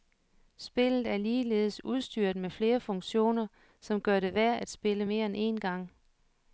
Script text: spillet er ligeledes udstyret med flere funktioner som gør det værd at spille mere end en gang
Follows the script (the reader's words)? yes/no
yes